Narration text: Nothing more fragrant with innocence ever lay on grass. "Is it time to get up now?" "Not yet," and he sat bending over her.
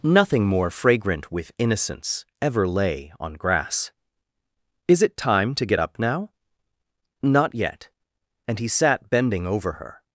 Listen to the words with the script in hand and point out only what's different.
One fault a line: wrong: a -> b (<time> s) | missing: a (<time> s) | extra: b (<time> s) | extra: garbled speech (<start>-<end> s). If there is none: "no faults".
no faults